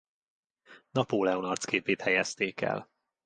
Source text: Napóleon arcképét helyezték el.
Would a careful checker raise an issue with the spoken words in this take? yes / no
no